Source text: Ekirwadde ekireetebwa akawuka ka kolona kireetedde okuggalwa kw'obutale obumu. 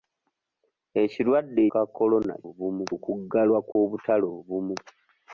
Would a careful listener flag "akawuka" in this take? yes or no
yes